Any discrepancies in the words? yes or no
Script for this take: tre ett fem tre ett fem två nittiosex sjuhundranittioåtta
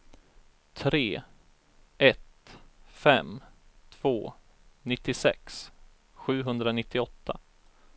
yes